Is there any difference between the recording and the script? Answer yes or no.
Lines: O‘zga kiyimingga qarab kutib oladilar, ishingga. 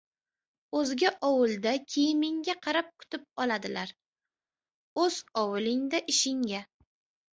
yes